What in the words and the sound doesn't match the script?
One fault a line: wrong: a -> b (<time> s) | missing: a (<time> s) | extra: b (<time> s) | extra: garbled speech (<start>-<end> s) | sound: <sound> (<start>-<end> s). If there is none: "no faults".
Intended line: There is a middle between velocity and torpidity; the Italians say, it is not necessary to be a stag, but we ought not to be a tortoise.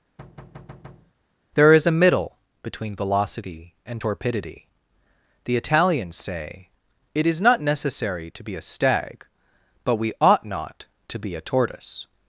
sound: thud (0.2-1.1 s)